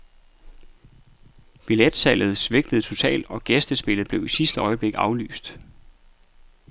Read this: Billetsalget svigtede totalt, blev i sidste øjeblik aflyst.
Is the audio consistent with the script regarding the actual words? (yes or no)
no